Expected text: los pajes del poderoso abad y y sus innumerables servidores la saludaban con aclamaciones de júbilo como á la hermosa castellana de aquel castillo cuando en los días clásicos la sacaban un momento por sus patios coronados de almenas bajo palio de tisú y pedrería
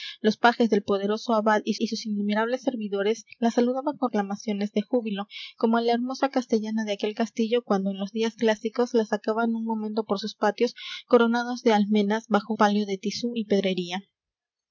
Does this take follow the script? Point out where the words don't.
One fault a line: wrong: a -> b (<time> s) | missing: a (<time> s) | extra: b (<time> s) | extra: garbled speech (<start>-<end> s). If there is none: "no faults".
no faults